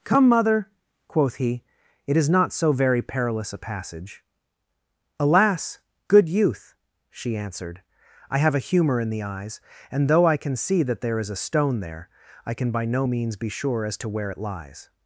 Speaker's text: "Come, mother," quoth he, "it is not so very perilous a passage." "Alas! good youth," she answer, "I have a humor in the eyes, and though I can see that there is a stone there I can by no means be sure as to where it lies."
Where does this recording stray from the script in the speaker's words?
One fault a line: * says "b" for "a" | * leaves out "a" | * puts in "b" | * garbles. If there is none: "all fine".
* says "answered" for "answer"